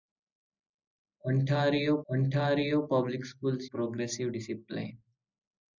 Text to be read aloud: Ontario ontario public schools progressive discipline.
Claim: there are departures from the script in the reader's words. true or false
false